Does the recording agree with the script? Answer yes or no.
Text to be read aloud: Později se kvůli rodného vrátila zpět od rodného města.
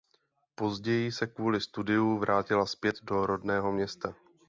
no